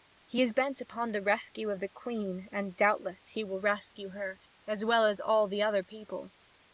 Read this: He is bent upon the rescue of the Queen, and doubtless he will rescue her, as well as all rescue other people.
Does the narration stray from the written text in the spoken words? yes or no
yes